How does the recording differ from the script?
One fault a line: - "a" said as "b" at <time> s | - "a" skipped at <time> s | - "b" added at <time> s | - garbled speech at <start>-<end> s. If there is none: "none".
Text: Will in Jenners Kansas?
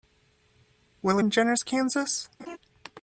none